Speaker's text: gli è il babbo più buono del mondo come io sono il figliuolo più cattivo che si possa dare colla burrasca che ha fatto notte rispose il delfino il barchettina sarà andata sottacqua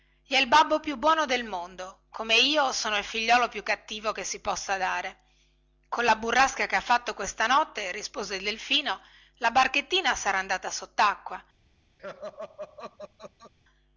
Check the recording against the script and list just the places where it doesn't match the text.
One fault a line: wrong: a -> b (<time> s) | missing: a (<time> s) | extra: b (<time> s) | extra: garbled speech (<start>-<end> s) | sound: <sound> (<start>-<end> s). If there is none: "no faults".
extra: questa (7.1 s)
wrong: il -> la (9.4 s)
sound: laugh (12.0-13.5 s)